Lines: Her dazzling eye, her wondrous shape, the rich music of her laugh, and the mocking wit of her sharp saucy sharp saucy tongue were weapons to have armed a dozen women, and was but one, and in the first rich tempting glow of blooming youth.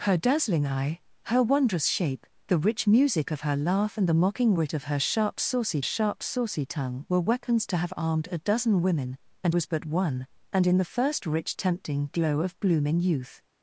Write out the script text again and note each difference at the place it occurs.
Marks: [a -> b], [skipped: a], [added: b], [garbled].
Her dazzling eye, her wondrous shape, the rich music of her laugh, and the mocking wit of her sharp saucy sharp saucy tongue were weapons to have armed a dozen women, and was but one, and in the first rich tempting glow of blooming youth.